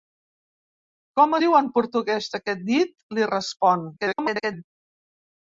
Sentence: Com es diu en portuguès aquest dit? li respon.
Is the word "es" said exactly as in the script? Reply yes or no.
no